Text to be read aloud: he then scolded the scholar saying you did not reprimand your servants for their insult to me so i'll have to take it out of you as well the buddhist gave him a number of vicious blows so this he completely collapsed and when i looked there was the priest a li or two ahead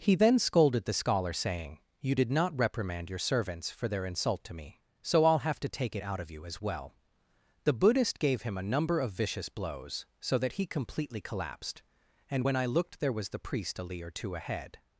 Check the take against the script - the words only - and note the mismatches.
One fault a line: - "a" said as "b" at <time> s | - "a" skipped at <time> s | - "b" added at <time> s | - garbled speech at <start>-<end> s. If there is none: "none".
- "this" said as "that" at 10.4 s